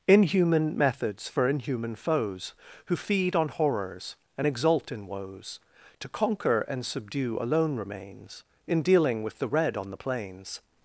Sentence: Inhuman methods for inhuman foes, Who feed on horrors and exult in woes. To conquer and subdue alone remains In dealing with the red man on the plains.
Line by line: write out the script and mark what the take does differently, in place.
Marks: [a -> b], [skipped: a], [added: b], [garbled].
Inhuman methods for inhuman foes, Who feed on horrors and exult in woes. To conquer and subdue alone remains In dealing with the red [skipped: man] on the plains.